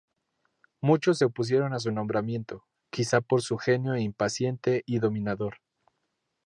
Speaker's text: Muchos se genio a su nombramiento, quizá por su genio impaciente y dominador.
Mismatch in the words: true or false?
true